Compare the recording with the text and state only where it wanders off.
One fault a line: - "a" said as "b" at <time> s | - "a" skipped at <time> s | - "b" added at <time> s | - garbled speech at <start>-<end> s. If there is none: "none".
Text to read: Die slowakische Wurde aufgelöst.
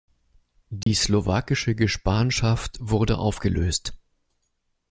- "Gespanschaft" added at 1.8 s